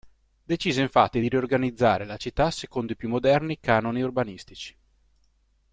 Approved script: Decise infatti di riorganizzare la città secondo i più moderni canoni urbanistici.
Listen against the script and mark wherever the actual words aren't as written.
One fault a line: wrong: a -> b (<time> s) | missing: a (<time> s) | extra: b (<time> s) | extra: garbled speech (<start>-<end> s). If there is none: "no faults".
no faults